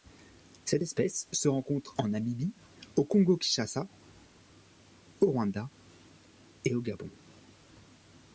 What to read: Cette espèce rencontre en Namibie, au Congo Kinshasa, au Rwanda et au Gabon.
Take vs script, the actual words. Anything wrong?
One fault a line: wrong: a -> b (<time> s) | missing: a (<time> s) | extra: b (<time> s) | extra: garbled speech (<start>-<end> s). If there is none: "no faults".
extra: se (1.3 s)